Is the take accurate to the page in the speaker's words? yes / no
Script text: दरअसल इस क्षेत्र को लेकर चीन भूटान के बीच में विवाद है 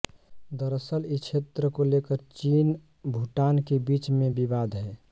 yes